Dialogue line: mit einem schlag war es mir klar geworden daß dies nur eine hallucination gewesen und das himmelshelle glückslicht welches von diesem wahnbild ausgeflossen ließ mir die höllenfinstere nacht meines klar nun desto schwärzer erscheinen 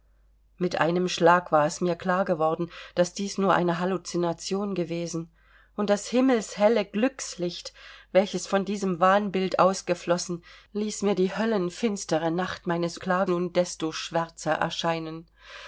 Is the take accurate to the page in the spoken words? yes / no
yes